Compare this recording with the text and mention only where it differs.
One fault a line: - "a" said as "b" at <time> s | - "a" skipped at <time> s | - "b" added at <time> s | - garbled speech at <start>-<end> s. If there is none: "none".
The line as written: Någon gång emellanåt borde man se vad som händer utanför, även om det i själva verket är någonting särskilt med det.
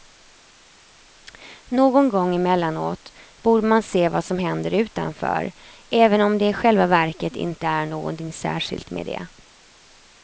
- "inte" added at 7.3 s